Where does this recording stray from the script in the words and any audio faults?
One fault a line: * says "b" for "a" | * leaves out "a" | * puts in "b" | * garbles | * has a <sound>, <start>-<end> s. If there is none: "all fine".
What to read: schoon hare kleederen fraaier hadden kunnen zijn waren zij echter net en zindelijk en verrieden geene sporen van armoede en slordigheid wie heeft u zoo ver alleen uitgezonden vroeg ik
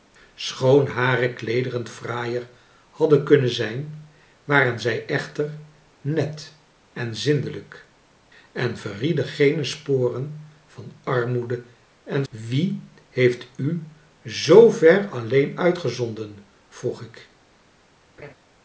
* leaves out "slordigheid"
* has a laugh, 18.2-18.3 s